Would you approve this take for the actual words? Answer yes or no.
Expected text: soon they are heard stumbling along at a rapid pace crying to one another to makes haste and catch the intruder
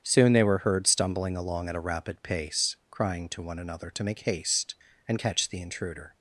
no